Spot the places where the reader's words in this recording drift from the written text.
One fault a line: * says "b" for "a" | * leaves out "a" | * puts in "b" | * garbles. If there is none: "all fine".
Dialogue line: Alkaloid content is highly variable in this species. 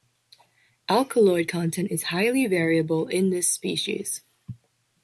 all fine